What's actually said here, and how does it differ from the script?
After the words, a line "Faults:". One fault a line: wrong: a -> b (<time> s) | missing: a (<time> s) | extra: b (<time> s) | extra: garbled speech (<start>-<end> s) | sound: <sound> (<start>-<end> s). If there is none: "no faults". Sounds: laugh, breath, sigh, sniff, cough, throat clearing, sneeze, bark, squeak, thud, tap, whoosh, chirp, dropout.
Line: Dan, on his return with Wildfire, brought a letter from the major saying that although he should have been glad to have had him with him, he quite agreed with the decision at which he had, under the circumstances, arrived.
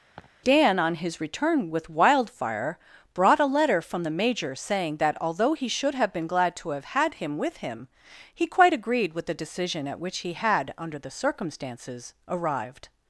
Dan, on his return with Wildfire, brought a letter from the major saying that although he should have been glad to have had him with him, he quite agreed with the decision at which he had, under the circumstances, arrived.
Faults:
sound: laugh (0.2-0.3 s)